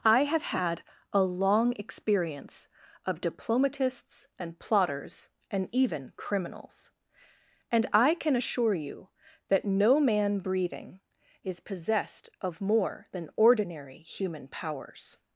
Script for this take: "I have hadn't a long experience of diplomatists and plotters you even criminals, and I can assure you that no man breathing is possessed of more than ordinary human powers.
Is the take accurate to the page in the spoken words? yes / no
no